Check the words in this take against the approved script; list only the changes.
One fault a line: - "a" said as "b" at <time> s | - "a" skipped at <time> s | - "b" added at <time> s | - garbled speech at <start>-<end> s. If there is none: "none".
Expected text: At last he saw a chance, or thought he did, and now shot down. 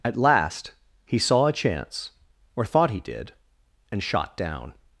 - "now" skipped at 4.0 s